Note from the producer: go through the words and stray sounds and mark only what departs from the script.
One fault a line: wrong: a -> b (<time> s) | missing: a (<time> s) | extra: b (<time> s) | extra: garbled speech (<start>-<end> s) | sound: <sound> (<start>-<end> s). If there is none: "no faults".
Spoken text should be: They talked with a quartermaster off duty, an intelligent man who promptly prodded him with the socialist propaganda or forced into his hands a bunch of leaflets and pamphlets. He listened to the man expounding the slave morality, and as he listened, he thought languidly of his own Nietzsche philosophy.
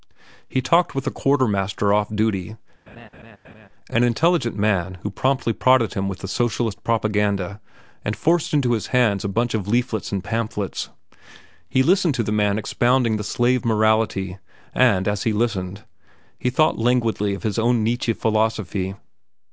wrong: They -> He (0.5 s)
sound: laugh (2.9-3.7 s)
wrong: or -> and (8.0 s)